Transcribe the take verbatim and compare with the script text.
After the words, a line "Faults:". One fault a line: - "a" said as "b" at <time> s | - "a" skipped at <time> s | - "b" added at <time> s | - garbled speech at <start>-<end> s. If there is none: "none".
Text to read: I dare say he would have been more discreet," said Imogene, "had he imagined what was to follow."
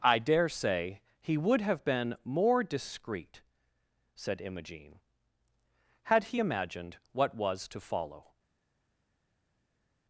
I dare say he would have been more discreet," said Imogene, "had he imagined what was to follow."
Faults:
none